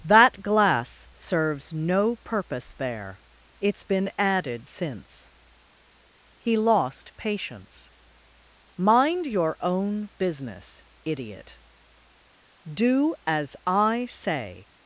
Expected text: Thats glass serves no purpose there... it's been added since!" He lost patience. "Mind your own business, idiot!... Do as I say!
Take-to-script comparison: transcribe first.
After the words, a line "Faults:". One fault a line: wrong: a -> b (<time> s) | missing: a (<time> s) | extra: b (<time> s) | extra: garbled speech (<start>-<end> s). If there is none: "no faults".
That glass serves no purpose there... it's been added since!" He lost patience. "Mind your own business, idiot!... Do as I say!
Faults:
wrong: Thats -> That (0.0 s)